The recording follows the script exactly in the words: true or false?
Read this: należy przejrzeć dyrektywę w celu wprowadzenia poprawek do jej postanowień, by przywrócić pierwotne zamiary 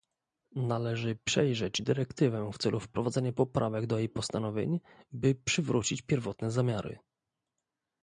true